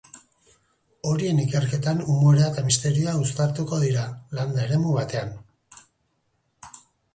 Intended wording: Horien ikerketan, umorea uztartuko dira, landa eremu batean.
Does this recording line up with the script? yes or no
no